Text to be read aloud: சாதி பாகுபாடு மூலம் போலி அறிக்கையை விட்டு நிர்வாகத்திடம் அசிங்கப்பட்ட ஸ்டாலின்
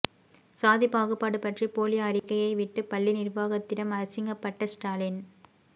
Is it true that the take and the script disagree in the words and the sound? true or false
true